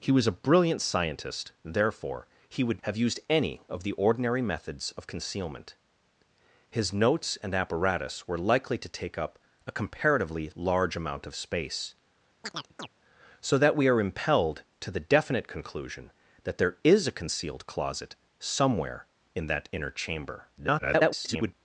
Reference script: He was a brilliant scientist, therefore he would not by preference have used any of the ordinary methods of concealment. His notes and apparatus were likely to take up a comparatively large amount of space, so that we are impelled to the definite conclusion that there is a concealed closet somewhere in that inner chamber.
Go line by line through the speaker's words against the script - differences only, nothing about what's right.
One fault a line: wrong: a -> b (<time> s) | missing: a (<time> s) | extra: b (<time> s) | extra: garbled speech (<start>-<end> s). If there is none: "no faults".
missing: not by preference (2.8 s)
extra: garbled speech (20.6-21.5 s)